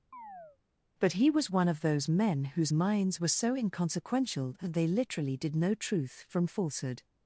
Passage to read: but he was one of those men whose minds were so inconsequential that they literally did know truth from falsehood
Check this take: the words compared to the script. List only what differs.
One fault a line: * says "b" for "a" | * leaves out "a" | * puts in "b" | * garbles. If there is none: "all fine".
all fine